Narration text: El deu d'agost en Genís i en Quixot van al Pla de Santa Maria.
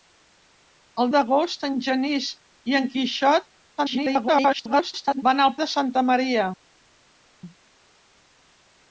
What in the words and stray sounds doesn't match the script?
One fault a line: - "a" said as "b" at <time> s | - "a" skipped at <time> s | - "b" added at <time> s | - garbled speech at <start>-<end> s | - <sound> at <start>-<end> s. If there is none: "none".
- "deu" skipped at 1.1 s
- garbled speech at 3.8-5.2 s
- "Pla" skipped at 5.6 s